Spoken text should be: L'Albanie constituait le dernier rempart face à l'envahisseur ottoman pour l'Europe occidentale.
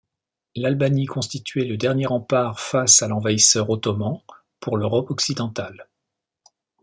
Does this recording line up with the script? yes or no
yes